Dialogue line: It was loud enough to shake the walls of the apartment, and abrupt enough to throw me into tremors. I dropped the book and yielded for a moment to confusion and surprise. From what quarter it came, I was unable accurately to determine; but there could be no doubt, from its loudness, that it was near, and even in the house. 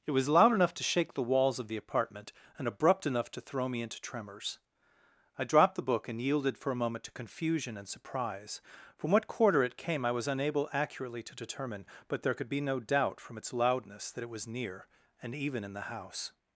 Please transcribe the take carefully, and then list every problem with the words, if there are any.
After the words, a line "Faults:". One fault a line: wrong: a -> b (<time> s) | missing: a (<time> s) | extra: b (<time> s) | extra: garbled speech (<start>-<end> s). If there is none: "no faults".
It was loud enough to shake the walls of the apartment, and abrupt enough to throw me into tremors. I dropped the book and yielded for a moment to confusion and surprise. From what quarter it came, I was unable accurately to determine; but there could be no doubt, from its loudness, that it was near, and even in the house.
Faults:
no faults